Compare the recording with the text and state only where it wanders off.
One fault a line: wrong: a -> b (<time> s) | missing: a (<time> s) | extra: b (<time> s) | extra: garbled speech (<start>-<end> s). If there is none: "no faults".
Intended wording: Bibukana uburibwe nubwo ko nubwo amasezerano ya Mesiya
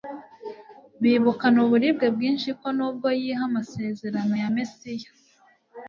wrong: nubwo -> bwinshi (2.1 s)
extra: yiha (3.2 s)